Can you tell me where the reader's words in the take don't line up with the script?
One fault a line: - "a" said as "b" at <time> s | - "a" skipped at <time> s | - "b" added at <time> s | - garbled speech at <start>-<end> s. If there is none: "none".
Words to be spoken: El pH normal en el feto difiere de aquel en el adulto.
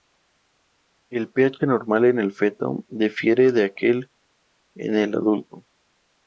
none